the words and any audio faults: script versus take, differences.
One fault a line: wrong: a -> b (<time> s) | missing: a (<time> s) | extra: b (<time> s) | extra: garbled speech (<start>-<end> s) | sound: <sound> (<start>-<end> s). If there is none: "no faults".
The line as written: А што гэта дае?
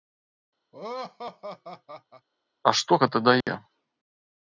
sound: laugh (0.7-2.3 s)
sound: dropout (3.4-3.5 s)